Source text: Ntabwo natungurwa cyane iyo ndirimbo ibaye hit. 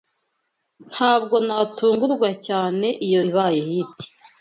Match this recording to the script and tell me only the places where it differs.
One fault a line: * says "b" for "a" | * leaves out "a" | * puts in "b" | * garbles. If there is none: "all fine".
* leaves out "ndirimbo"